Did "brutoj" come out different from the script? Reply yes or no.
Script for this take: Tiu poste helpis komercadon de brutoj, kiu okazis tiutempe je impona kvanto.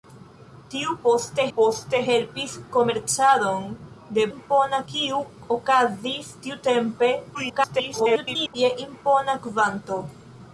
yes